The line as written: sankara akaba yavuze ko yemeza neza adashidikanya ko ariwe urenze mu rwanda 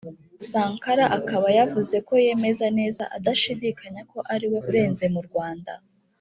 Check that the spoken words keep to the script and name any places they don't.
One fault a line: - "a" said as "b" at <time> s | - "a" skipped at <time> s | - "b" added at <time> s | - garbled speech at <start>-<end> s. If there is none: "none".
none